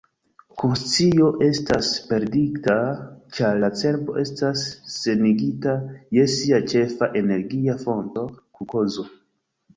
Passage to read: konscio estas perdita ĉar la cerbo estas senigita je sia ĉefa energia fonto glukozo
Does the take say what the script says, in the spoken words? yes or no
yes